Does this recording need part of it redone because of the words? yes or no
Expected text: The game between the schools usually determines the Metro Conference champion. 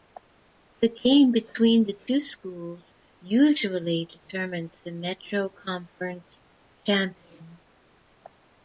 yes